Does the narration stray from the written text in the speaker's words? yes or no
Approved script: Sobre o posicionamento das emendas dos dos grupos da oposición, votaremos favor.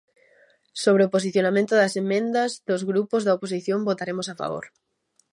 yes